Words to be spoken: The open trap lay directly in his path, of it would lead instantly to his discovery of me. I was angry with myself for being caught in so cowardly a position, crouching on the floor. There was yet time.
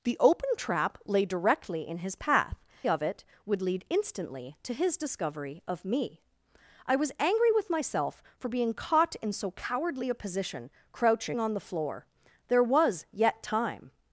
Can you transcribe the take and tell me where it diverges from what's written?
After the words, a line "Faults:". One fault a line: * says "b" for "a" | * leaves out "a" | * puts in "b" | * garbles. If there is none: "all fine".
The open trap lay directly in his path, of it would lead instantly to his discovery of me. I was angry with myself for being caught in so cowardly a position, crouching on the floor. There was yet time.
Faults:
all fine